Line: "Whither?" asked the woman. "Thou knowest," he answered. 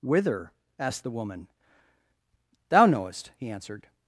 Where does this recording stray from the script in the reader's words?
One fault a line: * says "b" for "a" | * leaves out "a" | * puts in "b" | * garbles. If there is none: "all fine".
all fine